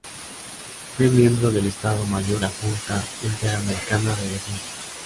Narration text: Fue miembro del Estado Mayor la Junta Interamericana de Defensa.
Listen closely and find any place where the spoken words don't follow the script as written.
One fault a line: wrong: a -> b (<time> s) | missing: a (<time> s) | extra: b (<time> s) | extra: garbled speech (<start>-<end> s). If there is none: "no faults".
no faults